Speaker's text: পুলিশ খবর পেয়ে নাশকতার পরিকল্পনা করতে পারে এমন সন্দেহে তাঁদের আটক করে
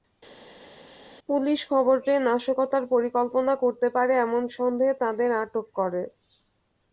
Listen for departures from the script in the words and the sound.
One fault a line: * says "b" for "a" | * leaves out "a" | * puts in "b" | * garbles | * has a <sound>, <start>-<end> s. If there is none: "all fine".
all fine